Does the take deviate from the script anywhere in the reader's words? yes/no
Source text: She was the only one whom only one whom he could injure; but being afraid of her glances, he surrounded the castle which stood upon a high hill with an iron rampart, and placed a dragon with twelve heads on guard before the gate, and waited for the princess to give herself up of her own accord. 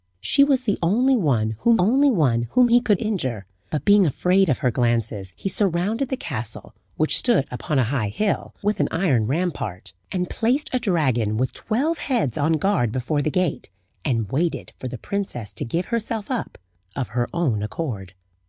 no